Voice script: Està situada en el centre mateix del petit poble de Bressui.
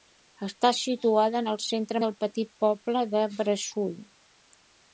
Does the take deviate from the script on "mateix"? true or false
true